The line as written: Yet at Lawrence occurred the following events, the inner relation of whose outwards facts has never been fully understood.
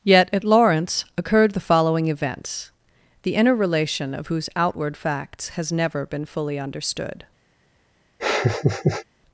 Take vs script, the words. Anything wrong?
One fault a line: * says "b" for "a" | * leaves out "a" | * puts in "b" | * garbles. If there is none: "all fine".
* says "outward" for "outwards"